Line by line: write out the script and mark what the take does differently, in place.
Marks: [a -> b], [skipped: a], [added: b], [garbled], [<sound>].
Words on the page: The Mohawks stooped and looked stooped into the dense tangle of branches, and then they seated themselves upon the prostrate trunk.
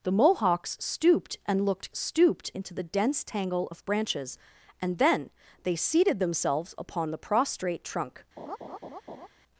The Mohawks stooped and looked stooped into the dense tangle of branches, and then they seated themselves upon the prostrate trunk. [laugh]